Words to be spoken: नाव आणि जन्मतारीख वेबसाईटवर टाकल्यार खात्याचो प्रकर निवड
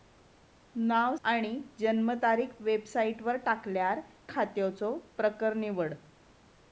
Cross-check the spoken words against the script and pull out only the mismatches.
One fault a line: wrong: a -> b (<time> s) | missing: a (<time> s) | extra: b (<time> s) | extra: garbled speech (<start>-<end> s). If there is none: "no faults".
no faults